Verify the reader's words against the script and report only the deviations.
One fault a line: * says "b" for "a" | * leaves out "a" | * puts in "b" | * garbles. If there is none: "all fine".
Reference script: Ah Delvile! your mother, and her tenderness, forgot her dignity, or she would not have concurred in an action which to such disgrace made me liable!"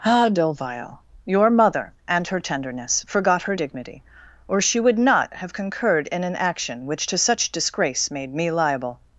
all fine